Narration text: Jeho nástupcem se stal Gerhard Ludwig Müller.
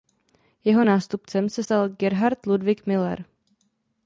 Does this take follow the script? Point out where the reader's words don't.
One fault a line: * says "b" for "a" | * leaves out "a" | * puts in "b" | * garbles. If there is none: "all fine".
all fine